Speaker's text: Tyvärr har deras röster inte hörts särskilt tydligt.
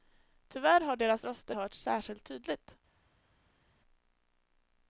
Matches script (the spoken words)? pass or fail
fail